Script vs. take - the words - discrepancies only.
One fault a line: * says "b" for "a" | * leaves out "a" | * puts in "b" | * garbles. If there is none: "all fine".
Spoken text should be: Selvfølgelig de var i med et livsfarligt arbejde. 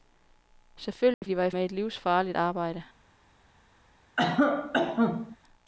all fine